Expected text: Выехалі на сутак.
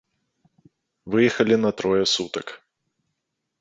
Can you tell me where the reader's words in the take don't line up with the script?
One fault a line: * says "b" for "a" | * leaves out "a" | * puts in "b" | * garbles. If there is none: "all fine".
* puts in "трое"